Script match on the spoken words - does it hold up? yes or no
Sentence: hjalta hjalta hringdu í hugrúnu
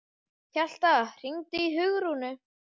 no